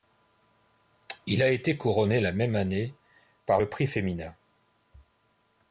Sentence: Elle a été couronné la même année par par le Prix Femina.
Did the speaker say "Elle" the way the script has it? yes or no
no